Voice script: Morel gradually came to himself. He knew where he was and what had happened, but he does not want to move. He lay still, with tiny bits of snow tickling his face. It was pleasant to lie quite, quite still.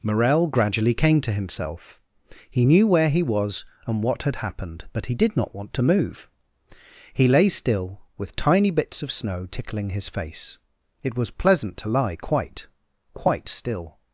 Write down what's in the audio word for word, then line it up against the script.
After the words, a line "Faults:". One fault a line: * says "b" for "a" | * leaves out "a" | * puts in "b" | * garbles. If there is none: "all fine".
Morel gradually came to himself. He knew where he was and what had happened, but he did not want to move. He lay still, with tiny bits of snow tickling his face. It was pleasant to lie quite, quite still.
Faults:
* says "did" for "does"